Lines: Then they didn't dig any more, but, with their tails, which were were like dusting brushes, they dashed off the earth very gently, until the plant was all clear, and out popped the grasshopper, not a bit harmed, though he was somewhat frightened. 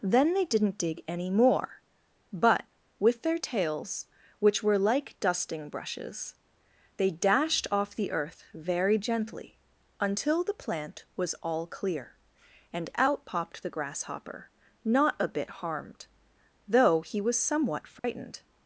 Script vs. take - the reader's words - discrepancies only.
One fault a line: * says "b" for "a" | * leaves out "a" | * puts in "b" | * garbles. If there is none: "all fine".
* leaves out "were"